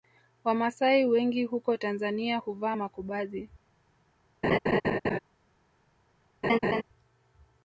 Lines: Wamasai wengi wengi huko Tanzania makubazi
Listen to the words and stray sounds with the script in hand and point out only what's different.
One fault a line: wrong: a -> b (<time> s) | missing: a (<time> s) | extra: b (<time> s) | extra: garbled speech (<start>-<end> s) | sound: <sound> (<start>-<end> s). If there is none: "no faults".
missing: wengi (1.4 s)
extra: huvaa (2.4 s)
sound: laugh (4.4-5.2 s)
sound: laugh (6.4-6.8 s)